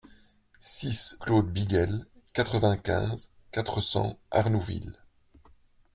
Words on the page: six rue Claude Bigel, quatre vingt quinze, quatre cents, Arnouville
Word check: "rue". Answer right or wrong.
wrong